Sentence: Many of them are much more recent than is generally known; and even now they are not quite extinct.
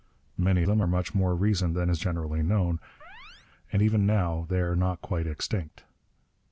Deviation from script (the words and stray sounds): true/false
true